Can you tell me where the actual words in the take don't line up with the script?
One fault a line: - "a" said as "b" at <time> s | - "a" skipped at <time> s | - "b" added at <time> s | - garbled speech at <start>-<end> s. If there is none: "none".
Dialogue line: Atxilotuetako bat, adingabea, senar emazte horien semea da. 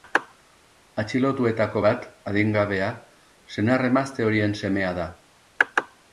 none